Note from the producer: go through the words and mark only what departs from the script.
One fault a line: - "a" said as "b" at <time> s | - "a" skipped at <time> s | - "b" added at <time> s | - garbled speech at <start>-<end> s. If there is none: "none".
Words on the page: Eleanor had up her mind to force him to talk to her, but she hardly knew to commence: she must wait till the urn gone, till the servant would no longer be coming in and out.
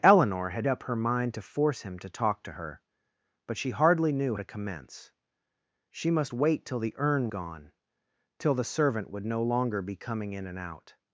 none